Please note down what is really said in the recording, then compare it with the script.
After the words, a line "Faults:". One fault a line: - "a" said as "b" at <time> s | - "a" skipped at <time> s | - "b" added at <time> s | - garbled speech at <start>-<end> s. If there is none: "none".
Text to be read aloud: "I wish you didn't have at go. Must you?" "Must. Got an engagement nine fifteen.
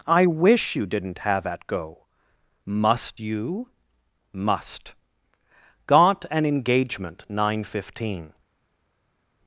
"I wish you didn't have at go. Must you?" "Must. Got an engagement nine fifteen.
Faults:
none